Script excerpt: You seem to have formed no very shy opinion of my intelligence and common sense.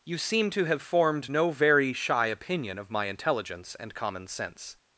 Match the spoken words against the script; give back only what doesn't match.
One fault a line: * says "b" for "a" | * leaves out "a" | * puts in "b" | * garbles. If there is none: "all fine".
all fine